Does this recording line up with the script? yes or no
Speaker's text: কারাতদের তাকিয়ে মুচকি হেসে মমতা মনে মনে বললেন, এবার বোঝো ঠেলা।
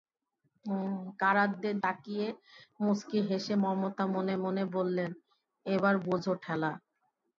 yes